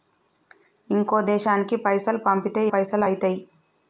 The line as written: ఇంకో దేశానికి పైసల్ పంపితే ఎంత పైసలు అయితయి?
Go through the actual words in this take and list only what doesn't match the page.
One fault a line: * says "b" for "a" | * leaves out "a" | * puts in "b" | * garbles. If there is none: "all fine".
* leaves out "ఎంత"